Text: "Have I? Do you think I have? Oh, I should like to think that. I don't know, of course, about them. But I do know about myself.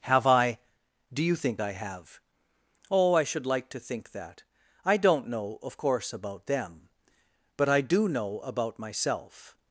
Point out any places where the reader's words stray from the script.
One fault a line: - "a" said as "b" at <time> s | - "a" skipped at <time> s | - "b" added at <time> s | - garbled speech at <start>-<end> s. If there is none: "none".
none